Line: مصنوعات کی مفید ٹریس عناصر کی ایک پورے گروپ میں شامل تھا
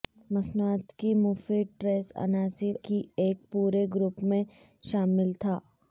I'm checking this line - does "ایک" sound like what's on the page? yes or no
yes